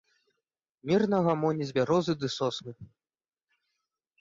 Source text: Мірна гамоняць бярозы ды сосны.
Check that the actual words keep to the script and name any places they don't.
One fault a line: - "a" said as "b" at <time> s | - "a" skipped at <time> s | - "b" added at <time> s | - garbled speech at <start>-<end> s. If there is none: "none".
none